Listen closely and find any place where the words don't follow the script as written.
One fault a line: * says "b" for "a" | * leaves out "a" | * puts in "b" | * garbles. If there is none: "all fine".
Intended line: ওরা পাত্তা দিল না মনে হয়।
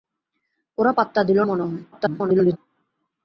* leaves out "না"
* garbles